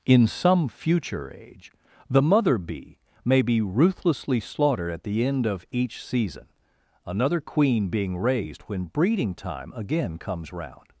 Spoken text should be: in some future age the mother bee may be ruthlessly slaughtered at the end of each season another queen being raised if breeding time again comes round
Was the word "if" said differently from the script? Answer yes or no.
yes